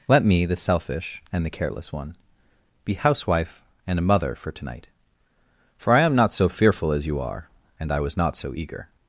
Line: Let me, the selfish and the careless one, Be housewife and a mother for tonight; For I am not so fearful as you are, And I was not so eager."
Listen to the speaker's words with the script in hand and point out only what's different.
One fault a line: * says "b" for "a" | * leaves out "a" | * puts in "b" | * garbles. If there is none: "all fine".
all fine